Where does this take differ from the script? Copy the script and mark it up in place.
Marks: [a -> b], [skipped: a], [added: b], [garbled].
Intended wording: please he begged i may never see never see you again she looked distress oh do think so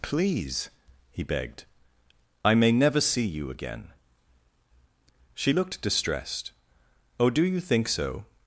please he begged i may never see [skipped: never see] you again she looked [distress -> distressed] oh do [added: you] think so